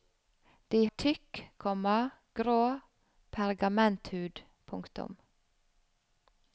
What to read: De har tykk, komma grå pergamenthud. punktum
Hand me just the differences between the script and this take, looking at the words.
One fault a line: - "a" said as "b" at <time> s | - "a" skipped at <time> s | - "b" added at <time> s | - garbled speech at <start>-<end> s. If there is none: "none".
- "har" skipped at 0.8 s